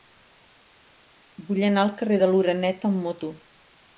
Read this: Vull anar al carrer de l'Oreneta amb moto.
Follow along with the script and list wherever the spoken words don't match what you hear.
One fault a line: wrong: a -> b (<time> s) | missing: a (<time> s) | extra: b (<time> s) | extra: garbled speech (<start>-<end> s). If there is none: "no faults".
no faults